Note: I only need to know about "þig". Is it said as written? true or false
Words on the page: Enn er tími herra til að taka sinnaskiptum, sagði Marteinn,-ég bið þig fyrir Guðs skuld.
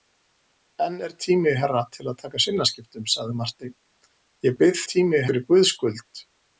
false